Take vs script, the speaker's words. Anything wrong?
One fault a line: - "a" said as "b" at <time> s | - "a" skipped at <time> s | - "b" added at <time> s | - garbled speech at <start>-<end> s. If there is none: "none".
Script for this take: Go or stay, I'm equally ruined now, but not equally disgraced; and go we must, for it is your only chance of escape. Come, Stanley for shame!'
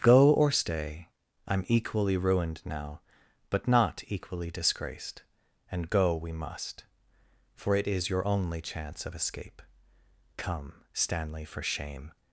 none